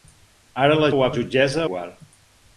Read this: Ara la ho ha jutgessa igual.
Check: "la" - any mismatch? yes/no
no